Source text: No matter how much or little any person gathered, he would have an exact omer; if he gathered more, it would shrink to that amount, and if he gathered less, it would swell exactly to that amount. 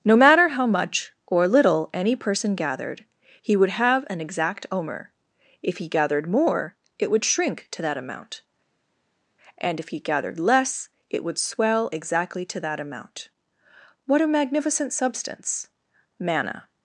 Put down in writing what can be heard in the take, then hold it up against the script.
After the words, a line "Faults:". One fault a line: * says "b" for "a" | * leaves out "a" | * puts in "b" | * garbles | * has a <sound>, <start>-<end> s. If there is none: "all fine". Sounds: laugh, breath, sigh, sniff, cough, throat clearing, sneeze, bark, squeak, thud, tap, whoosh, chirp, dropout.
No matter how much or little any person gathered, he would have an exact omer; if he gathered more, it would shrink to that amount, and if he gathered less, it would swell exactly to that amount. What a magnificent substance manna
Faults:
* puts in "What a magnificent substance manna"